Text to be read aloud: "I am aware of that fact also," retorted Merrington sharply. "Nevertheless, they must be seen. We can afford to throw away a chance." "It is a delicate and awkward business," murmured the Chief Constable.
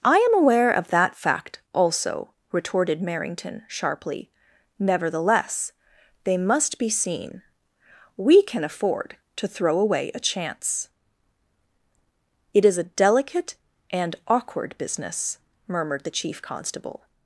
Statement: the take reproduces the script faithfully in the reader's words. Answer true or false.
true